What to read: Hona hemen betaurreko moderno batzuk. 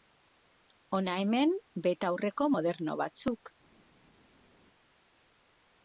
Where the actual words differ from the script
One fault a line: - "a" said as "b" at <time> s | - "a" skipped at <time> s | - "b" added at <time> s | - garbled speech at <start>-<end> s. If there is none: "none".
none